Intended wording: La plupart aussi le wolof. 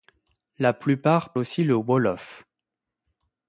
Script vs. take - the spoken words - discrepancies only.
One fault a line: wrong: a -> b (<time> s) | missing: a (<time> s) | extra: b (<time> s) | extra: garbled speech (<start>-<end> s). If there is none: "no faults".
no faults